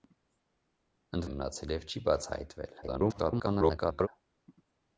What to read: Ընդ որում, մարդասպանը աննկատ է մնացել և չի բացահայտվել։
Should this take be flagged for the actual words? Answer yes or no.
yes